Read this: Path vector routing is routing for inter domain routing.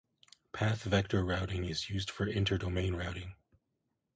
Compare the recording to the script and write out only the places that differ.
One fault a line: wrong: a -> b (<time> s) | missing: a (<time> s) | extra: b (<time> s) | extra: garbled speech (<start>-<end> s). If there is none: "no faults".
wrong: routing -> used (1.9 s)